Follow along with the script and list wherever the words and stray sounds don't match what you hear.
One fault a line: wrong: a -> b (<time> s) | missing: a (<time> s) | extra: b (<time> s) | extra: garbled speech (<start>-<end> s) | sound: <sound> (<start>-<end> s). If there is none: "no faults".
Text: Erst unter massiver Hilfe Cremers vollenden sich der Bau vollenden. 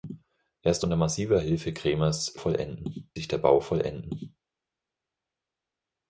no faults